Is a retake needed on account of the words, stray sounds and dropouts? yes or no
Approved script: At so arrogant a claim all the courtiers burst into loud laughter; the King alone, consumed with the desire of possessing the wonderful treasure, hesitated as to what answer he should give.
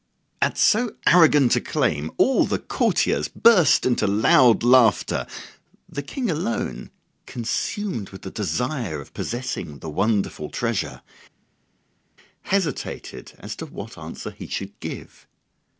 no